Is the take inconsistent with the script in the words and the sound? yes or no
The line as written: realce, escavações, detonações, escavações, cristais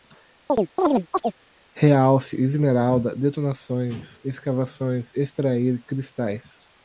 yes